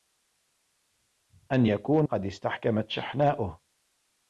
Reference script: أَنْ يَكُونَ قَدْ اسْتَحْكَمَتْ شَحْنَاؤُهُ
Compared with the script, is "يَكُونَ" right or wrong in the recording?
right